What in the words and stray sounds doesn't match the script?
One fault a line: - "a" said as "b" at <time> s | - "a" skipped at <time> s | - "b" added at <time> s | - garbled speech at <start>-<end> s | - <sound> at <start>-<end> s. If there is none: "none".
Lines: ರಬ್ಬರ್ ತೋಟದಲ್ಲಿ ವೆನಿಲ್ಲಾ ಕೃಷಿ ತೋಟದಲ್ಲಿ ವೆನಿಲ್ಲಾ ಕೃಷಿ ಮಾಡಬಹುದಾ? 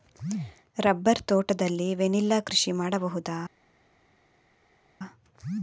- "ತೋಟದಲ್ಲಿ ವೆನಿಲ್ಲಾ ಕೃಷಿ" skipped at 2.7 s